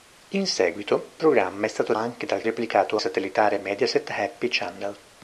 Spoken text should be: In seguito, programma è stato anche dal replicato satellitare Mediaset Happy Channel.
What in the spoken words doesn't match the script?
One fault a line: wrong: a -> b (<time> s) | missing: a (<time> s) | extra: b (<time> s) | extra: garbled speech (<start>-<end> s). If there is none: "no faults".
no faults